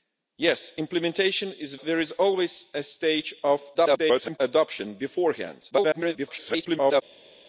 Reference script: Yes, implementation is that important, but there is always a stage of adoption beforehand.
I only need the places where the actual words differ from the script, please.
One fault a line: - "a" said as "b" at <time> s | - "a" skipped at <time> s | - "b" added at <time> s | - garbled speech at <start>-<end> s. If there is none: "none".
- "that important but" skipped at 1.8 s
- garbled speech at 3.7-4.4 s
- garbled speech at 5.7-7.0 s